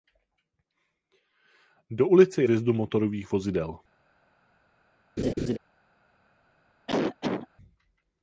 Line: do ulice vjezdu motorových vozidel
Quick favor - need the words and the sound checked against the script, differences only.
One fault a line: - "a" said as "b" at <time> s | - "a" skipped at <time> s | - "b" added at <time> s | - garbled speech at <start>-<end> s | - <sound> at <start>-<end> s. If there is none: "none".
- laugh at 5.2-5.6 s
- cough at 6.9-7.5 s